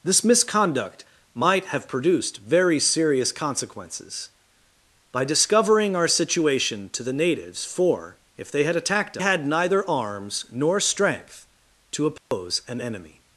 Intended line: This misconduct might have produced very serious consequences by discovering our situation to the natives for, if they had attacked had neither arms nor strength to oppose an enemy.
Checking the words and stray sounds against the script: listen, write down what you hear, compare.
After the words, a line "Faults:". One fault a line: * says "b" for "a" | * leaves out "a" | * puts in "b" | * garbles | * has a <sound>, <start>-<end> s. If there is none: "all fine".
This misconduct might have produced very serious consequences by discovering our situation to the natives for, if they had attacked had neither arms nor strength to oppose an enemy.
Faults:
* has a dropout, 12.2-12.3 s